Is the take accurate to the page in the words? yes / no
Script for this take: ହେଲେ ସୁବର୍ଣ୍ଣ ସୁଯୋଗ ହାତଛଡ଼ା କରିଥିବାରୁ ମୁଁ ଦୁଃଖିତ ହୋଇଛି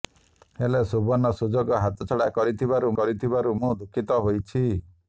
no